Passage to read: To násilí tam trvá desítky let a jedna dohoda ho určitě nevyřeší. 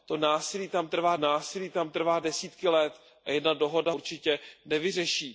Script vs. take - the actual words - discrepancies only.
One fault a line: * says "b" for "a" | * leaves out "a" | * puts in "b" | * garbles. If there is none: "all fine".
* puts in "násilí tam trvá"
* leaves out "ho"